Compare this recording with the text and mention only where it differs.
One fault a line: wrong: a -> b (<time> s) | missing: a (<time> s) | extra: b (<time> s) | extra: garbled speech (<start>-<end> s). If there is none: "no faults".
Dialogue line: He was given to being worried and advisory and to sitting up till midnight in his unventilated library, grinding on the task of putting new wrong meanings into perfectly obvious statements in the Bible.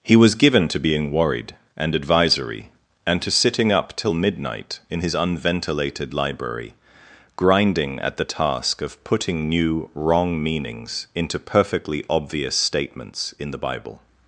wrong: on -> at (8.0 s)